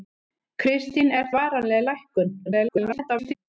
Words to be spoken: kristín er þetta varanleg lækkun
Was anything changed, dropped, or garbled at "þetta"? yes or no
yes